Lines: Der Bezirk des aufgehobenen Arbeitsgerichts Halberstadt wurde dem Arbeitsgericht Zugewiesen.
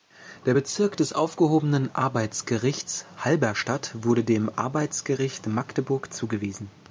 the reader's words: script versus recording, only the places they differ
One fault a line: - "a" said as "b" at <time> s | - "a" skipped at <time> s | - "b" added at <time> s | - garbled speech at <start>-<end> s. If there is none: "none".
- "Magdeburg" added at 5.5 s